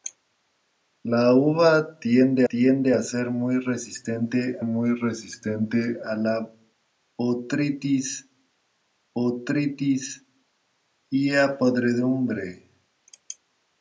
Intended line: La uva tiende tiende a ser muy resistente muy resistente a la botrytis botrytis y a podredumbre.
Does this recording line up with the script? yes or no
yes